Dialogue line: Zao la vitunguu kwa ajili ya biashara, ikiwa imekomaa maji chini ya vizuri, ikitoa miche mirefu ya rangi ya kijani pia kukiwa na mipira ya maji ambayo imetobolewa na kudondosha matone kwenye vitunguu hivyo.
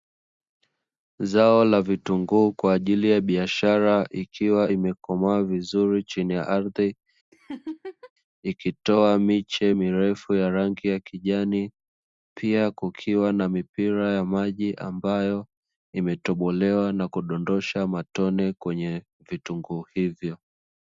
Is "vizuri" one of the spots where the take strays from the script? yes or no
yes